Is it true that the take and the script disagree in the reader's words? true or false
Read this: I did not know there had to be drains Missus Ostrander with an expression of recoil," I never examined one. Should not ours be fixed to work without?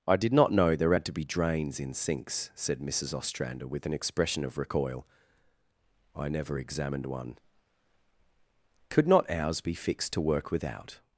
true